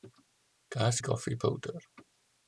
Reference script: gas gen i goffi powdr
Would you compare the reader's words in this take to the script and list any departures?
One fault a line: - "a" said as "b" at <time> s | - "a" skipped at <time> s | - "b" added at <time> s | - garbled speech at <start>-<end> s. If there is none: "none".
- "gen" skipped at 1.0 s